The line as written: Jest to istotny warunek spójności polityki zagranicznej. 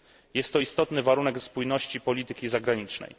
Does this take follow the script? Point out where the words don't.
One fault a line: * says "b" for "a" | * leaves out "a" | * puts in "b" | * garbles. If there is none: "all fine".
all fine